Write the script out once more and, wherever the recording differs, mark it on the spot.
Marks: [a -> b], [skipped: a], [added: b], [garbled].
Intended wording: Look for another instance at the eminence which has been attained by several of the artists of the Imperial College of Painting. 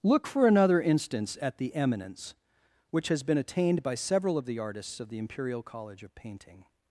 Look for another instance at the eminence which has been attained by several of the artists of the Imperial College of Painting.